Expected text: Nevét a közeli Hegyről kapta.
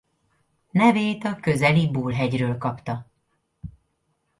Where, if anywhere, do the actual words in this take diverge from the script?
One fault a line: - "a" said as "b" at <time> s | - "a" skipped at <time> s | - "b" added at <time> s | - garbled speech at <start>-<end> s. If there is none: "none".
- "Bull" added at 1.9 s